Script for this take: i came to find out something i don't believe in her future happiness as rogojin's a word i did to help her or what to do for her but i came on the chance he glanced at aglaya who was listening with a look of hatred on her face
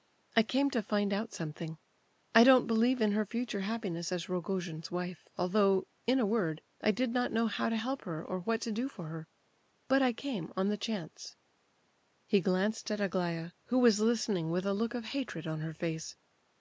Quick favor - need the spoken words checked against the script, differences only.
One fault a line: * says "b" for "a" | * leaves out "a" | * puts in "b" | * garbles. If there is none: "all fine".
* puts in "wife although in"
* puts in "not know how"